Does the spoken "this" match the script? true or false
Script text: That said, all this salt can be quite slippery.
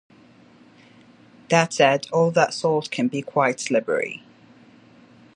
false